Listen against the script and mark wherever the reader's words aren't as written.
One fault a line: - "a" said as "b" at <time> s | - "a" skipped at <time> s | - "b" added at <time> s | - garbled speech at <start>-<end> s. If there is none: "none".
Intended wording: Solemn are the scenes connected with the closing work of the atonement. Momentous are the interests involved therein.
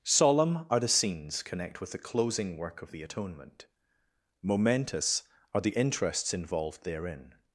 - "connected" said as "connect" at 1.4 s